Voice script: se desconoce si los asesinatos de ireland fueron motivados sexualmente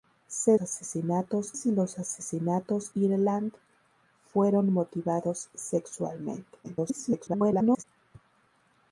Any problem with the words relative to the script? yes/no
yes